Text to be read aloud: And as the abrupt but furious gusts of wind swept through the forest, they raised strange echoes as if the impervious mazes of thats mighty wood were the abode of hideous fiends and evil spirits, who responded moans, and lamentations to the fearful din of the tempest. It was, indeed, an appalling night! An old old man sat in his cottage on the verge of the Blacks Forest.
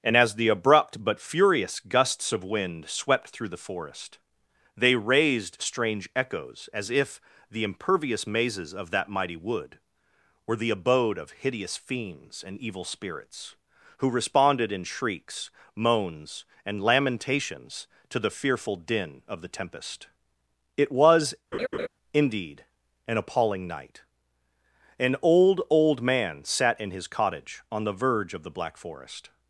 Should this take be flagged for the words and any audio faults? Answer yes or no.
yes